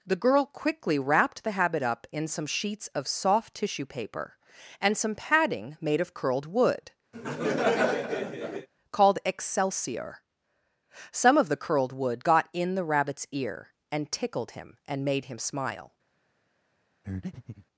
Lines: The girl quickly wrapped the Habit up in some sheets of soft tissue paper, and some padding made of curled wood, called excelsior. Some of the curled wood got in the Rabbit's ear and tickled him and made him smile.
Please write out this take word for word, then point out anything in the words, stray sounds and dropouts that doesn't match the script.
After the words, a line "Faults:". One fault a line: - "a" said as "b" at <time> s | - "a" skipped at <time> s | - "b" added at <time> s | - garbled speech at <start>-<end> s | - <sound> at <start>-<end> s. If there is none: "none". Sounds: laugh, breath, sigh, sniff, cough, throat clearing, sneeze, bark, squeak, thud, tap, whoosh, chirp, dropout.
The girl quickly wrapped the Habit up in some sheets of soft tissue paper, and some padding made of curled wood, called excelsior. Some of the curled wood got in the Rabbit's ear and tickled him and made him smile.
Faults:
- laugh at 7.1-8.7 s
- breath at 17.0-17.7 s